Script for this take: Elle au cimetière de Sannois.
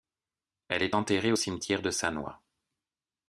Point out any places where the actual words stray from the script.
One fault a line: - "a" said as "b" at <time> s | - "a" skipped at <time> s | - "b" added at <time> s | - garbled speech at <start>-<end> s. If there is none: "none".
- "est enterrée" added at 0.8 s